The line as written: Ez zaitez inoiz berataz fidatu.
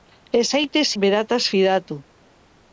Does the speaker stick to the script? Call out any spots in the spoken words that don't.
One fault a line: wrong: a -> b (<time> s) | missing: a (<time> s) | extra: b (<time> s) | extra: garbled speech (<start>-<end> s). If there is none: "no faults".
missing: inoiz (0.9 s)